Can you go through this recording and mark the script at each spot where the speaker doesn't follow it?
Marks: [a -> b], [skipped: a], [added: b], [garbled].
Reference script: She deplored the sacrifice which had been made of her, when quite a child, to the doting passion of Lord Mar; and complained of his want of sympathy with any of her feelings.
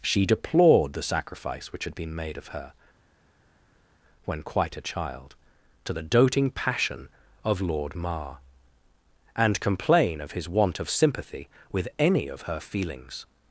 She deplored the sacrifice which had been made of her, when quite a child, to the doting passion of Lord Mar; and [complained -> complain] of his want of sympathy with any of her feelings.